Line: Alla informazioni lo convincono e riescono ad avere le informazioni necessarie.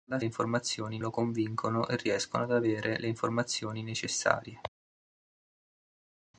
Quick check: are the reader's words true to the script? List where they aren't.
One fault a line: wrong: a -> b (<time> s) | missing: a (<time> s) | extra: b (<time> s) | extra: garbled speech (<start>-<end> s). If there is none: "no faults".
no faults